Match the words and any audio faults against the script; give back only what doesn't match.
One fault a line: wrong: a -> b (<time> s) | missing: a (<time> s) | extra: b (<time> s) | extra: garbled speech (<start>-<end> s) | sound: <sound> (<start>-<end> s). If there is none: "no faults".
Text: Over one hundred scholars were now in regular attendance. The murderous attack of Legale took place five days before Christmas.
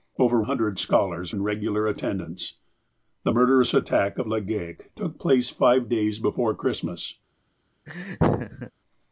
missing: one (0.4 s)
missing: were now (1.4 s)
sound: laugh (7.9-8.7 s)